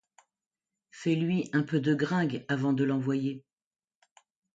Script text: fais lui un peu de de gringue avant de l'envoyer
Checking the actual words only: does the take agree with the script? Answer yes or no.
no